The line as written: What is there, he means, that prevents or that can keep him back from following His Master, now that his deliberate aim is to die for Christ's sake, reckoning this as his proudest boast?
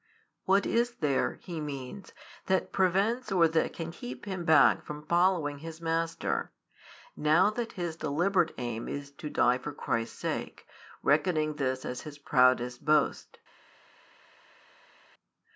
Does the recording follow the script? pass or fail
pass